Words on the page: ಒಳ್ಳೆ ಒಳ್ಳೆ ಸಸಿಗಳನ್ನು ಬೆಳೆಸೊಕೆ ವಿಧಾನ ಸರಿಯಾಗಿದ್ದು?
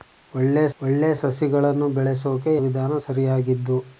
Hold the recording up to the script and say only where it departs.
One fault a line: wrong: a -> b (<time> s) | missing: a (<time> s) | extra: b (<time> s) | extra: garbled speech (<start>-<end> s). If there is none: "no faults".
no faults